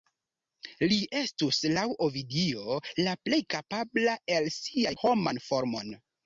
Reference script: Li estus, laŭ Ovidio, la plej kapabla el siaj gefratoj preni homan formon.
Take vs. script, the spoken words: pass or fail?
fail